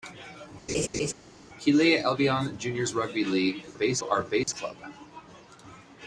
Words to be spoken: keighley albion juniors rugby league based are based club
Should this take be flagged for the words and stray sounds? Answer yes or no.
yes